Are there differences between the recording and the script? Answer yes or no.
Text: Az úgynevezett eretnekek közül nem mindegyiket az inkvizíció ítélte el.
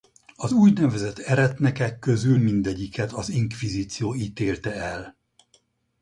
yes